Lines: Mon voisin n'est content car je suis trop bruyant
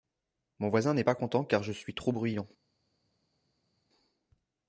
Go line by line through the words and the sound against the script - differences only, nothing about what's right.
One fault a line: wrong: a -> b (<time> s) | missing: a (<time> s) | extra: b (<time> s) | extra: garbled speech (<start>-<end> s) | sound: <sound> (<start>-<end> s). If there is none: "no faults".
extra: pas (1.0 s)